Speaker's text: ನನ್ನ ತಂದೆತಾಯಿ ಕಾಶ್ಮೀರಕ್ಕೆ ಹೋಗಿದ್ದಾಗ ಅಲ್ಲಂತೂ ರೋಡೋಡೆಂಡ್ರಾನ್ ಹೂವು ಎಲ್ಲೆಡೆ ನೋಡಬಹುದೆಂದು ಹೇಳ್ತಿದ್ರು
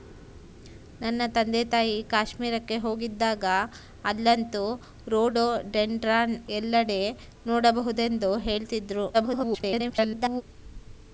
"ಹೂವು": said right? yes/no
no